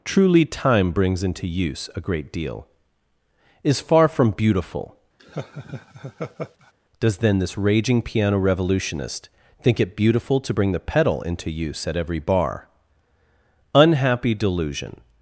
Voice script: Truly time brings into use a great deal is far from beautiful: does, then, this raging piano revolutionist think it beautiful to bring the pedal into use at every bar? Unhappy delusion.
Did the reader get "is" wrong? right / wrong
right